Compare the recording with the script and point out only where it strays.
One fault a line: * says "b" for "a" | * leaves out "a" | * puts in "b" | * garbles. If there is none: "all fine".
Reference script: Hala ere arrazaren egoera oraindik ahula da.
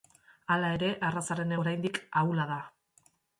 * leaves out "egoera"